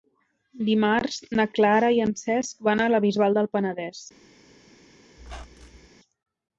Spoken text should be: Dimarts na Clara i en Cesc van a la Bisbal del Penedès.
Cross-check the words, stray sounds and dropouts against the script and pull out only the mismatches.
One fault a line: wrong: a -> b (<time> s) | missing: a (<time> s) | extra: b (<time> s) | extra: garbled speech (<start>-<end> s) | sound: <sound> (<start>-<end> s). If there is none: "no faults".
sound: squeak (5.2-5.9 s)